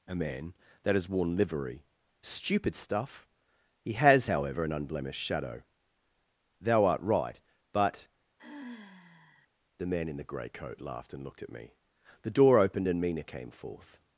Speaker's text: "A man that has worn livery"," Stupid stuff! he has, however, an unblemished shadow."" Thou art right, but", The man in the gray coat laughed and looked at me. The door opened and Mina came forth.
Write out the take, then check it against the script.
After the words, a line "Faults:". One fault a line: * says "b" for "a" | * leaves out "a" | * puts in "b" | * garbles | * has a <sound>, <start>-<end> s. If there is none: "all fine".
"A man that has worn livery"," Stupid stuff! he has, however, an unblemished shadow."" Thou art right, but", The man in the gray coat laughed and looked at me. The door opened and Mina came forth.
Faults:
* has a sigh, 8.4-9.5 s